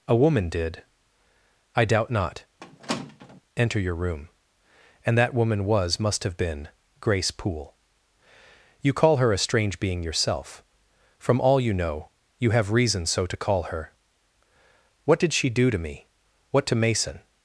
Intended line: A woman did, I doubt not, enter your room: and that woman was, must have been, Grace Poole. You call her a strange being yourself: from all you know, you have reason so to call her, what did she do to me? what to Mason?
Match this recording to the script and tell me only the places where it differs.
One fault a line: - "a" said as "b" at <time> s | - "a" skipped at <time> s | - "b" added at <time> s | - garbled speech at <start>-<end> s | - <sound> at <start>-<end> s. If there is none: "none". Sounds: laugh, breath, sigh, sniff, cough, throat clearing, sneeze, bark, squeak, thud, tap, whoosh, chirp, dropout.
- squeak at 2.6-3.4 s